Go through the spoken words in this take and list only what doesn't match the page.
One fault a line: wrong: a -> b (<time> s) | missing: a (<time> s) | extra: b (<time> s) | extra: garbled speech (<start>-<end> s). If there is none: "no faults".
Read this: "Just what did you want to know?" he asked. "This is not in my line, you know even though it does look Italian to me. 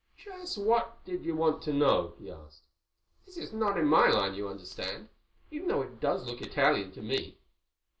wrong: know -> understand (4.5 s)